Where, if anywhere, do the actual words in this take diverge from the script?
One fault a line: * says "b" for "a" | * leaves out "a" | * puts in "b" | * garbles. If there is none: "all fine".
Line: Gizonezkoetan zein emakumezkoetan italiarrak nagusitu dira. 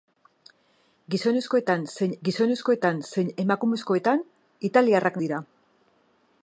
* puts in "gizonezkoetan zein"
* leaves out "nagusitu"